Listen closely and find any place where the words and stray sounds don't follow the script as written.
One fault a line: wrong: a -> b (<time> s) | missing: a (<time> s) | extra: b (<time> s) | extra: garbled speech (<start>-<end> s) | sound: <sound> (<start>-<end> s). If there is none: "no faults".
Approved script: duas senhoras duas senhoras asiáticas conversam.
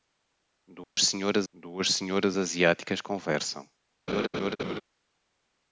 sound: dropout (0.8-1.0 s)
sound: laugh (4.1-4.8 s)